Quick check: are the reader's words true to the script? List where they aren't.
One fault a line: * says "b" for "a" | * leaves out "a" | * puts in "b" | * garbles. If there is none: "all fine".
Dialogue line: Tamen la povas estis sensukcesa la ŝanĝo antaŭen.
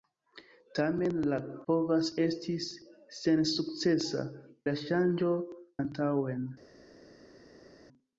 all fine